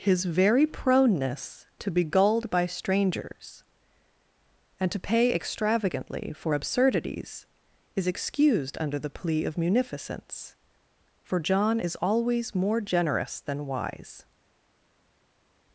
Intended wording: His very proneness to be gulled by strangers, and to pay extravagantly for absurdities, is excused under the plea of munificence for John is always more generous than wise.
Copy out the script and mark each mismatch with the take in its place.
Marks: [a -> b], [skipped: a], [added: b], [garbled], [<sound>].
His very proneness to be gulled by strangers, and to pay extravagantly for absurdities, is excused under the plea of munificence for John is always more generous than wise.